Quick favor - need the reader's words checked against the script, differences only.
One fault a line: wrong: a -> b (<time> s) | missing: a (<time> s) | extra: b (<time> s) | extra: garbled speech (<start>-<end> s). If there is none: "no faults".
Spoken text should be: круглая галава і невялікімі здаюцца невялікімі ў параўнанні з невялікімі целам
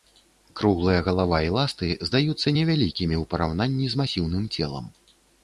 wrong: невялікімі -> ласты (1.6 s)
wrong: невялікімі -> масіўным (4.0 s)